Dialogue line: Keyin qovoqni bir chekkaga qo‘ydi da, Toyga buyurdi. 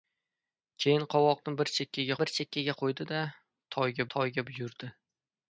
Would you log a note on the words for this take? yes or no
yes